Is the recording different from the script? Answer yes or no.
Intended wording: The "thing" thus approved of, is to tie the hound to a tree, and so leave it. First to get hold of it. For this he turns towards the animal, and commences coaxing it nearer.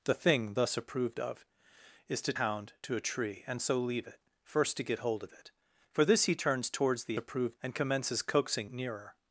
yes